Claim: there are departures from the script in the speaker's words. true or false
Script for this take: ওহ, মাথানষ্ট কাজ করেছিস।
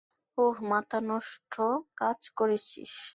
false